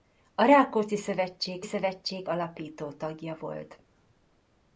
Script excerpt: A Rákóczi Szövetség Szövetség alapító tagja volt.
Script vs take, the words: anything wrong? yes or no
no